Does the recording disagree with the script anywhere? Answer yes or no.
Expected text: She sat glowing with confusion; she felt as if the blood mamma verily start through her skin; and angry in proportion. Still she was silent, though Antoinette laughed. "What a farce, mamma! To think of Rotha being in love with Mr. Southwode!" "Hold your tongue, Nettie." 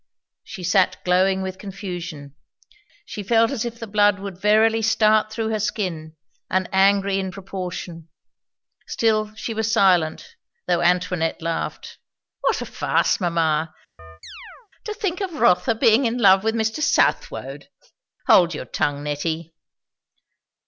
yes